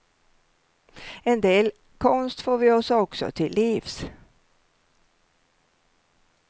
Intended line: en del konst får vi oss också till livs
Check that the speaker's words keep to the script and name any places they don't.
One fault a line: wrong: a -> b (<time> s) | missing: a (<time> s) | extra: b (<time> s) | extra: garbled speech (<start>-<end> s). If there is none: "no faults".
no faults